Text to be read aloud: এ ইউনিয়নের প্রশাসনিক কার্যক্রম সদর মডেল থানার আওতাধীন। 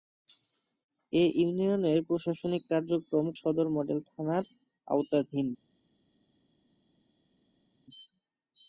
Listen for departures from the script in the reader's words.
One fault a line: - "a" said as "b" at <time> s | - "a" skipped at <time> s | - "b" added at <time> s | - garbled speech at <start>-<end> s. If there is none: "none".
none